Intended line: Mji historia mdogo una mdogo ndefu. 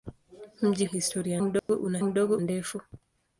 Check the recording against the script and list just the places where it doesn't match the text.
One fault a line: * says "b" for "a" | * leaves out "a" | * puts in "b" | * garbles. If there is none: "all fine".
all fine